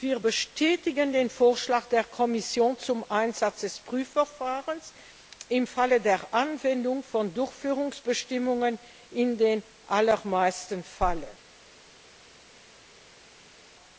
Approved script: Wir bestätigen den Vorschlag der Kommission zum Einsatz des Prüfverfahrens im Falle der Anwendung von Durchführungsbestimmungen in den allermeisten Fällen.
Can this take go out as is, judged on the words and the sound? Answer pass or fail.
pass